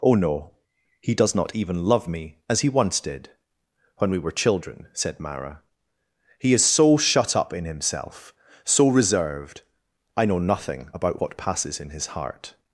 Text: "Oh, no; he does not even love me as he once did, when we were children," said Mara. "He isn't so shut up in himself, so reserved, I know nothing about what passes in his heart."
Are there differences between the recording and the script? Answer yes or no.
yes